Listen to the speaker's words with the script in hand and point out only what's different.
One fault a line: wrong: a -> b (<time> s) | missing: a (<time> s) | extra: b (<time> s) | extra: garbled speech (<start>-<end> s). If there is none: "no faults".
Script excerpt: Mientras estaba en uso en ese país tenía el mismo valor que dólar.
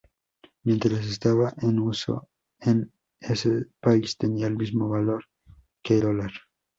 no faults